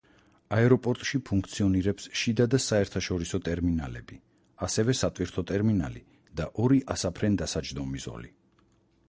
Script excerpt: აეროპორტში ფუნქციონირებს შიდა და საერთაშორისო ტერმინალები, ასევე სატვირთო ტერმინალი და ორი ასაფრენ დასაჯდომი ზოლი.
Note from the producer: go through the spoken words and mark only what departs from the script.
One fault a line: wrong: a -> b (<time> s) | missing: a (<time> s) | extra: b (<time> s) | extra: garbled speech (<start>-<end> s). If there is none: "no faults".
no faults